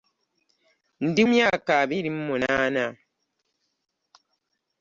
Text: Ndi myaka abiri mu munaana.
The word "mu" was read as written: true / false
true